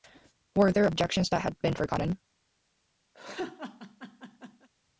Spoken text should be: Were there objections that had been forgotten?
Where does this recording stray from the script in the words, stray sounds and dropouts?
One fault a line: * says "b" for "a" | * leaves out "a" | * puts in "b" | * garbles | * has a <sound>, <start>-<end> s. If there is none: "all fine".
* has a laugh, 3.1-4.7 s